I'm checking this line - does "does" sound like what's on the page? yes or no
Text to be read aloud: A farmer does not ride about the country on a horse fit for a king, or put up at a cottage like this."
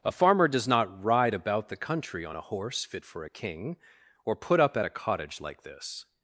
yes